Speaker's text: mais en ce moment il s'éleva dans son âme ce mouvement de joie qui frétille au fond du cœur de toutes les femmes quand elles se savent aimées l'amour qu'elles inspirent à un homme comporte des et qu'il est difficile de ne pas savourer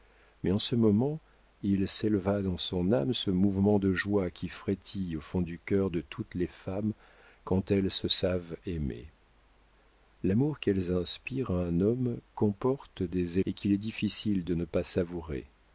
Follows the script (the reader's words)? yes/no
yes